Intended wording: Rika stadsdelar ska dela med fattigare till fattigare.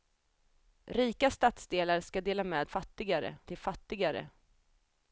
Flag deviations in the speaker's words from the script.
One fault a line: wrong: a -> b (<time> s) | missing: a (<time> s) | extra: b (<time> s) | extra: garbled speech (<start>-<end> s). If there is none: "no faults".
no faults